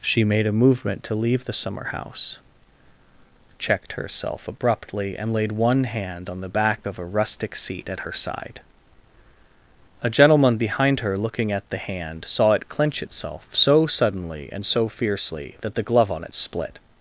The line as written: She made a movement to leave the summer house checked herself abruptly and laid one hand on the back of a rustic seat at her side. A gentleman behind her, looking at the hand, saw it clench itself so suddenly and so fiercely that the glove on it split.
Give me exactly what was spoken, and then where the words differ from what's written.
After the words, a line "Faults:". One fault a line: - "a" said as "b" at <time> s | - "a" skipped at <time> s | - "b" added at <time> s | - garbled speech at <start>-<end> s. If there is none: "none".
She made a movement to leave the summer house checked herself abruptly and laid one hand on the back of a rustic seat at her side. A gentleman behind her, looking at the hand, saw it clench itself so suddenly and so fiercely that the glove on it split.
Faults:
none